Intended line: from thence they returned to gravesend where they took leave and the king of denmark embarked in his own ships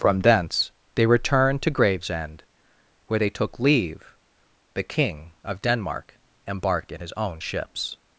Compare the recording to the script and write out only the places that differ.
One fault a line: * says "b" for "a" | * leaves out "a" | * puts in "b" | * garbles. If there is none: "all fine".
* leaves out "and"